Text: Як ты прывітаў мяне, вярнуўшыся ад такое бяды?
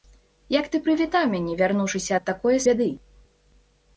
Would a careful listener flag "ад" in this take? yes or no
no